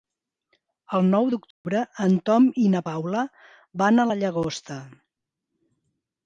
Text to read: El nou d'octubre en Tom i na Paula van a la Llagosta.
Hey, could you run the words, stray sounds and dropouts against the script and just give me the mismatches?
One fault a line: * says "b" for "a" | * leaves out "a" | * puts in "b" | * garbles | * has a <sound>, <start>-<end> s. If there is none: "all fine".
* has a dropout, 1.5-1.6 s